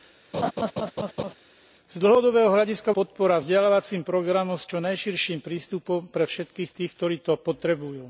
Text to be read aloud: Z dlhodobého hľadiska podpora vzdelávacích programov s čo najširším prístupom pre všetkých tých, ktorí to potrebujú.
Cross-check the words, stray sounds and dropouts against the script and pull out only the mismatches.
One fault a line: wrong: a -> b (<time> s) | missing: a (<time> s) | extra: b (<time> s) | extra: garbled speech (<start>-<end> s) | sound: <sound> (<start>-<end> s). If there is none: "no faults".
sound: laugh (0.3-1.3 s)